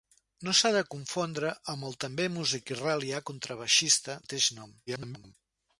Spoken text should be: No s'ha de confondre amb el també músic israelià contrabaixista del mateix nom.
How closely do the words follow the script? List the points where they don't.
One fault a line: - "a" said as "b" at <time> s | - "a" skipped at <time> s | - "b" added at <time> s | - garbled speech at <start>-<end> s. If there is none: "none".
- "del" skipped at 4.2 s
- garbled speech at 4.9-5.4 s